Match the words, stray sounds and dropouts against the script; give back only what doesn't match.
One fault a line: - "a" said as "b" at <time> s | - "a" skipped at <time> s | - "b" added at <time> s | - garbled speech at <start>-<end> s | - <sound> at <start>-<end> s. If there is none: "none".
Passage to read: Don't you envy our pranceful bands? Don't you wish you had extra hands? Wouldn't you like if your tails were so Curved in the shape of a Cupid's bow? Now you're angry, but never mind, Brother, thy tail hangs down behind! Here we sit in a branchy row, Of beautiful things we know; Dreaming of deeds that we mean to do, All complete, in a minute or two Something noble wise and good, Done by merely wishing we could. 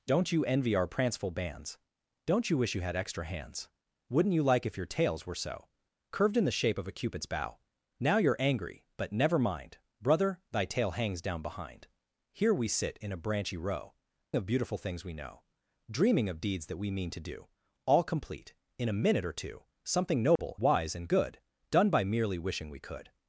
- dropout at 20.4-20.4 s